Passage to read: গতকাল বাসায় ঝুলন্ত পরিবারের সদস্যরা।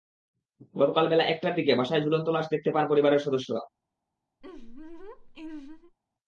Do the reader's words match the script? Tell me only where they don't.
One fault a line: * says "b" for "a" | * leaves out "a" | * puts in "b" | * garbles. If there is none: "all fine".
* puts in "বেলা একটার দিকে"
* puts in "লাশ দেখতে পান"